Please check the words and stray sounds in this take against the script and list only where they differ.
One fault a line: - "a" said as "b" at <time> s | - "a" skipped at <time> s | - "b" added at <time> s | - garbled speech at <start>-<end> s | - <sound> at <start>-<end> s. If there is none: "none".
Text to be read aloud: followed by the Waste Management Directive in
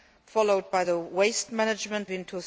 - "Directive" skipped at 2.1 s